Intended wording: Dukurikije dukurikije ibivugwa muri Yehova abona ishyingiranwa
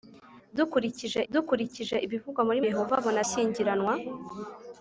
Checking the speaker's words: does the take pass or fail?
pass